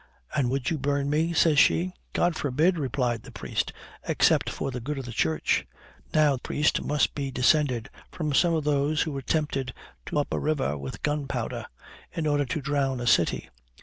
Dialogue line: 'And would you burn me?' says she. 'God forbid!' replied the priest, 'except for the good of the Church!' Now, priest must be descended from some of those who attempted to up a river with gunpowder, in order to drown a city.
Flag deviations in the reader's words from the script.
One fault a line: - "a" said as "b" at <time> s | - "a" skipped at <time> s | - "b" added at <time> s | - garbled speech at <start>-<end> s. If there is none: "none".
none